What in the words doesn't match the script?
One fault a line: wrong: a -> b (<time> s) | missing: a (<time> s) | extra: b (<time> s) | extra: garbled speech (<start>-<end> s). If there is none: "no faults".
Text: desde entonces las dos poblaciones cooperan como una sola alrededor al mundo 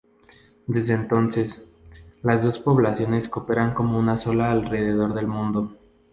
wrong: al -> del (5.1 s)